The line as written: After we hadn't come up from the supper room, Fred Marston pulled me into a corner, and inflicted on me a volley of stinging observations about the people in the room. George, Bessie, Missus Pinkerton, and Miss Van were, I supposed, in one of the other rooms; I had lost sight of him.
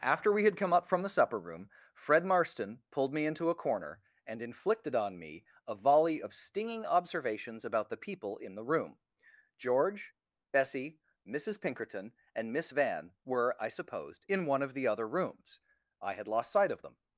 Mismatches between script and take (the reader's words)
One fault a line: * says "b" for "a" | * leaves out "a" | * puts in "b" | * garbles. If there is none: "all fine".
* says "had" for "hadn't"
* says "them" for "him"